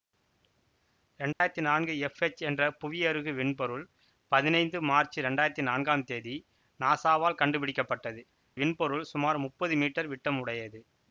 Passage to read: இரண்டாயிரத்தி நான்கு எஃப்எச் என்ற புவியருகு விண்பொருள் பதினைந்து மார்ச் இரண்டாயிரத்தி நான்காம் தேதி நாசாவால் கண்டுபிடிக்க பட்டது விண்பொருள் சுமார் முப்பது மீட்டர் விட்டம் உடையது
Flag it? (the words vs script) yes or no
no